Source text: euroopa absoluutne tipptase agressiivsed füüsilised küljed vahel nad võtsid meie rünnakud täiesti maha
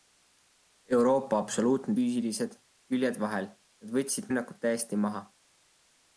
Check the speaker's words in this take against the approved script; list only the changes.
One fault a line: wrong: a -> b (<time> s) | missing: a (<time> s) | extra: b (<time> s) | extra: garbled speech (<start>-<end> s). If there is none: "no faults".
missing: tipptase agressiivsed (1.9 s)
missing: meie (4.3 s)